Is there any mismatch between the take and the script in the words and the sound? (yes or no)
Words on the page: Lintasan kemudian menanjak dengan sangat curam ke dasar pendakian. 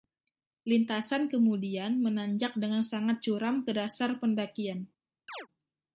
yes